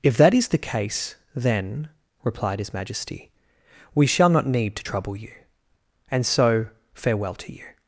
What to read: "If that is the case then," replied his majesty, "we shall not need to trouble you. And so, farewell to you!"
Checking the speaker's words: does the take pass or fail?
pass